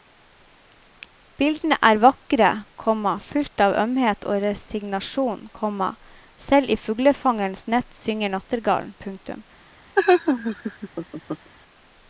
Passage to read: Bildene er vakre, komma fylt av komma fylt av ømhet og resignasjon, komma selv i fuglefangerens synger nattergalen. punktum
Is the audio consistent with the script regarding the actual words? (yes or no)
no